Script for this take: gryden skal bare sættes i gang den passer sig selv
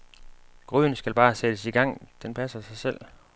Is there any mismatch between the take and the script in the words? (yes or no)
no